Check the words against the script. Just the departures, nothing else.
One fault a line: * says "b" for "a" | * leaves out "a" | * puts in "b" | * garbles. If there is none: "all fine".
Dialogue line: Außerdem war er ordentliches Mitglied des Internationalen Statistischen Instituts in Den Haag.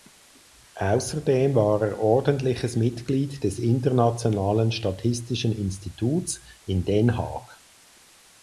all fine